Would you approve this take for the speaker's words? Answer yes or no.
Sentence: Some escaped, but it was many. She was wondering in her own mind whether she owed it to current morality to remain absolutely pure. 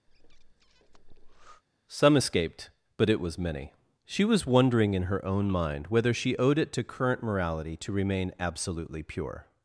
yes